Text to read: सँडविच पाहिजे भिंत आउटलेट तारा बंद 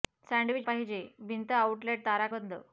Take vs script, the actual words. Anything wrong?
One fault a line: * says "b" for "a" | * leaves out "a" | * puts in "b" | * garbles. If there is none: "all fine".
all fine